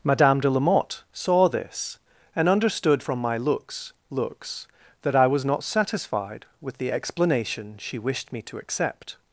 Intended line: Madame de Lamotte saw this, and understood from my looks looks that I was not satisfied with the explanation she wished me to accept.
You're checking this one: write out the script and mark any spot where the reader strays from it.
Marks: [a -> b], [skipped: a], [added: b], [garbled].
Madame de Lamotte saw this, and understood from my looks looks that I was not satisfied with the explanation she wished me to accept.